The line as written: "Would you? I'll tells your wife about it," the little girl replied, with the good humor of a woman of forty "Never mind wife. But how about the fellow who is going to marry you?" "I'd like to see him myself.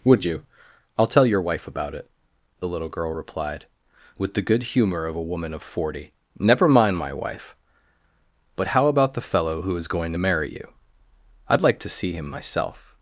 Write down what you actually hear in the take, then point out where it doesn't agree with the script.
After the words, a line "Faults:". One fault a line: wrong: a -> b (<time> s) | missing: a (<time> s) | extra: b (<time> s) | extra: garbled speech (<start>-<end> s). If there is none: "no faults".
"Would you? I'll tell your wife about it," the little girl replied, with the good humor of a woman of forty "Never mind my wife. But how about the fellow who is going to marry you?" "I'd like to see him myself.
Faults:
wrong: tells -> tell (1.1 s)
extra: my (7.0 s)